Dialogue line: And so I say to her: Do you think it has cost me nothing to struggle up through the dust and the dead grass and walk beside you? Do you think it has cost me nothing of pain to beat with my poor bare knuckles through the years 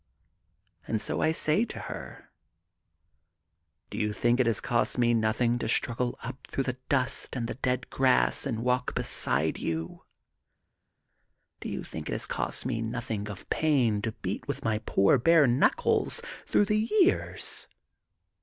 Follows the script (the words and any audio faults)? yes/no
yes